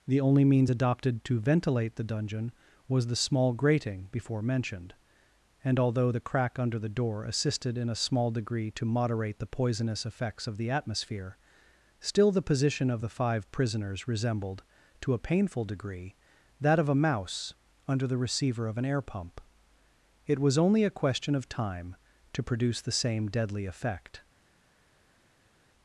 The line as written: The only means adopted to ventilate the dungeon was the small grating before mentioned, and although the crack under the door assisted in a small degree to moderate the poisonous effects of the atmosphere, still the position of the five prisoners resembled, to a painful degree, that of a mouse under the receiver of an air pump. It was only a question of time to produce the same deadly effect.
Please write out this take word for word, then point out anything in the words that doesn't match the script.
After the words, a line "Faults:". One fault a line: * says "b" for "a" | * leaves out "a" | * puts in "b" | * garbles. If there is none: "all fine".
The only means adopted to ventilate the dungeon was the small grating before mentioned, and although the crack under the door assisted in a small degree to moderate the poisonous effects of the atmosphere, still the position of the five prisoners resembled, to a painful degree, that of a mouse under the receiver of an air pump. It was only a question of time to produce the same deadly effect.
Faults:
all fine